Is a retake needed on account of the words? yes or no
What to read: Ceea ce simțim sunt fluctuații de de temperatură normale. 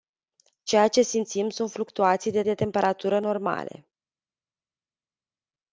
no